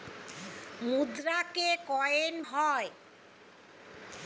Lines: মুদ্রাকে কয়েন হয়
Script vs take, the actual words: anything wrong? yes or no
no